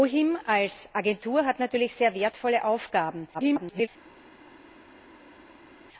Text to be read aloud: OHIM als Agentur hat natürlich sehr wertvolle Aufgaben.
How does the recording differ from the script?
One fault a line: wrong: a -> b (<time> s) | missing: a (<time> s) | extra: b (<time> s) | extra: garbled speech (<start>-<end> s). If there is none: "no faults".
extra: garbled speech (3.3-3.9 s)